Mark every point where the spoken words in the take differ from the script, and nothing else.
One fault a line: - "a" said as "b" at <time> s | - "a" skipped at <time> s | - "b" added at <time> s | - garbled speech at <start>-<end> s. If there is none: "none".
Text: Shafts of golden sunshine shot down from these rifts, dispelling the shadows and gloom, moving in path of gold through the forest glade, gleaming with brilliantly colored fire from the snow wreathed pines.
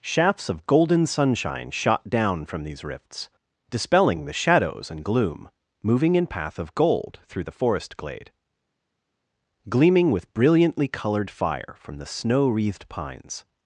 none